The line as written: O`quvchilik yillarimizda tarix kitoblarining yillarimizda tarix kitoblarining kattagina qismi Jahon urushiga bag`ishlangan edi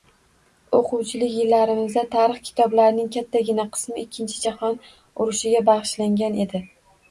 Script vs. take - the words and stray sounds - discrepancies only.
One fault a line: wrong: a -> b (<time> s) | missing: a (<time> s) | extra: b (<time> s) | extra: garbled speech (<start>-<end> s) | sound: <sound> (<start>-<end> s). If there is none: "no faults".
missing: yillarimizda tarix kitoblarining (3.1 s)
extra: Ikkinchi (4.1 s)